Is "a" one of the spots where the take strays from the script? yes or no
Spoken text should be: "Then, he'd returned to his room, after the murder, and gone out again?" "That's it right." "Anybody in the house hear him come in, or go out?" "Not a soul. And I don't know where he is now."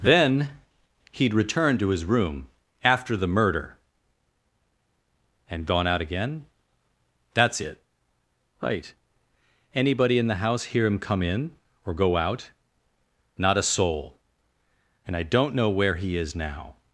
no